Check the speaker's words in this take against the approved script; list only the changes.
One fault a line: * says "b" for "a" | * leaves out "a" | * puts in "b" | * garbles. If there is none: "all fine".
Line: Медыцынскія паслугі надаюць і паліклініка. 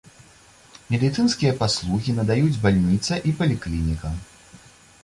* puts in "бальніца"